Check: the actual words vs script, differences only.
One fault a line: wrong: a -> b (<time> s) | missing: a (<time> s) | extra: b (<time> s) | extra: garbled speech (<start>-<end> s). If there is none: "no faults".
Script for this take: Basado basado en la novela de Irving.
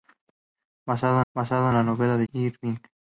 no faults